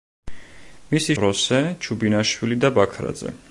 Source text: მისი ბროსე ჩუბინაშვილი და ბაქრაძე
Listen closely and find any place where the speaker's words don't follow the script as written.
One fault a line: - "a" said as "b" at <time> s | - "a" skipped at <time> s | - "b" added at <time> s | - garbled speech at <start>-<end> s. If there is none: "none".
none